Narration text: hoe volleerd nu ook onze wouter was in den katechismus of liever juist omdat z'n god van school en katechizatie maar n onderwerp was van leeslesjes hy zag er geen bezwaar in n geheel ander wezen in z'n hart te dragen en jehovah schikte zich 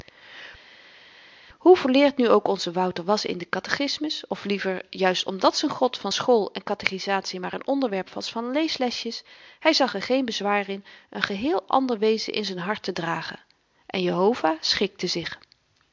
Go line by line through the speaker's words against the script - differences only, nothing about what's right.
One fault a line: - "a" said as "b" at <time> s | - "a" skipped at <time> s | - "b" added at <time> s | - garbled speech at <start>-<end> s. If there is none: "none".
none